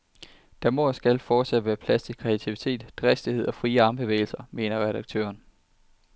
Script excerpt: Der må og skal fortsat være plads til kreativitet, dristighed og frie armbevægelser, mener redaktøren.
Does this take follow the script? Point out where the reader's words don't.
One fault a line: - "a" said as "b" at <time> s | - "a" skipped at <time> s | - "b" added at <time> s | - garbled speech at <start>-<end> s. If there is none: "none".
none